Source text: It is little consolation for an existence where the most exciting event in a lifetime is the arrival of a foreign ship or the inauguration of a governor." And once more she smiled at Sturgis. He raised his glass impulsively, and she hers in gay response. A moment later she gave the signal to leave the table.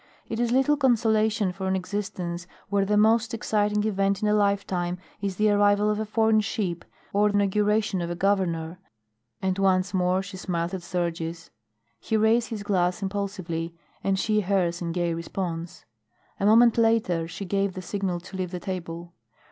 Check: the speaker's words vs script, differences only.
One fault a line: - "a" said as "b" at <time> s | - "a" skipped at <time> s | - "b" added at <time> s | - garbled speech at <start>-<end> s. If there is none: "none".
- "the" skipped at 7.3 s